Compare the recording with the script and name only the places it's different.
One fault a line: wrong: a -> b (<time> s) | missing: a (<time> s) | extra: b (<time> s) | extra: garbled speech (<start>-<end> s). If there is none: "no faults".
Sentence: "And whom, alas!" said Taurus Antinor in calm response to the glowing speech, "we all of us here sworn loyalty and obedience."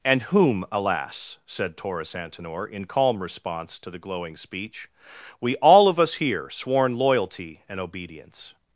no faults